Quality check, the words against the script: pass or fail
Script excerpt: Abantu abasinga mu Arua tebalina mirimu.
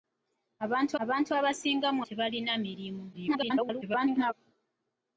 fail